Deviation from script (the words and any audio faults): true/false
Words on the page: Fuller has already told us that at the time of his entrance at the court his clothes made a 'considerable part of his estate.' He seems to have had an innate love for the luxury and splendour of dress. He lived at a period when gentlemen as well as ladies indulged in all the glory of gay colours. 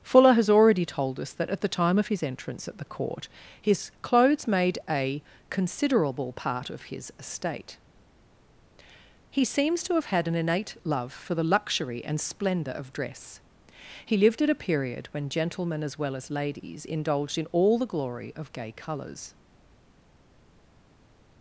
false